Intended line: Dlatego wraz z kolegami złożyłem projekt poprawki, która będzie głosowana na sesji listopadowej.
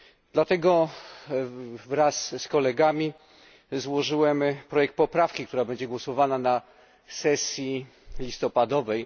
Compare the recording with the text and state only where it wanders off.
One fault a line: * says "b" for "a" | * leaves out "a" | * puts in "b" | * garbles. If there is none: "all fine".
all fine